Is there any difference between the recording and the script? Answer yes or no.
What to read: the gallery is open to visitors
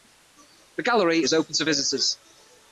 no